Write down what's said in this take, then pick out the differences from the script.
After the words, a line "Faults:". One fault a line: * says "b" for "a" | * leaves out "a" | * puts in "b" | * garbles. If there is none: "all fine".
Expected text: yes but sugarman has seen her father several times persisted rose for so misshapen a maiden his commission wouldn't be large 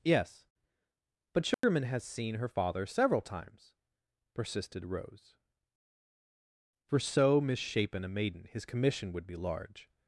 yes but sugarman has seen her father several times persisted rose for so misshapen a maiden his commission would be large
Faults:
* says "would" for "wouldn't"